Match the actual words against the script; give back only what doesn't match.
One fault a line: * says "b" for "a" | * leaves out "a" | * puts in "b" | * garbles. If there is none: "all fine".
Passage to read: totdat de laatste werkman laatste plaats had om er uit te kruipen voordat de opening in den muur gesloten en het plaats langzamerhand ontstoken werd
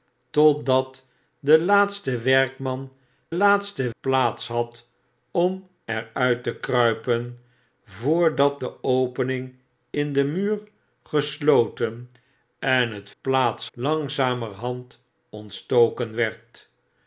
all fine